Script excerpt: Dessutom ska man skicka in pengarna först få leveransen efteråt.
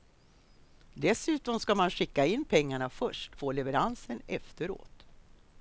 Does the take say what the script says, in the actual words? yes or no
yes